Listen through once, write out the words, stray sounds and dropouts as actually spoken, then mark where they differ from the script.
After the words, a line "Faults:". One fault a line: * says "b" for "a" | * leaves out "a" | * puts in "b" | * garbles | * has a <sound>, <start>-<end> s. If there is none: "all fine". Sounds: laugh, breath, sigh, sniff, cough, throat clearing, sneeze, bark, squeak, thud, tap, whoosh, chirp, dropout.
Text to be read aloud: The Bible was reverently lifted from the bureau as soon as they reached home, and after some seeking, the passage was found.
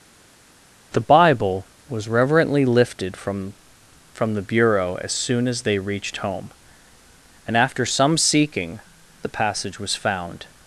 The Bible was reverently lifted from from the bureau as soon as they reached home, and after some seeking, the passage was found.
Faults:
* puts in "from"